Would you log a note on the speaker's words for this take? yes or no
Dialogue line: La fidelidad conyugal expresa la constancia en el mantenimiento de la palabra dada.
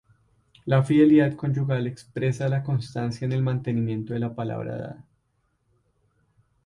no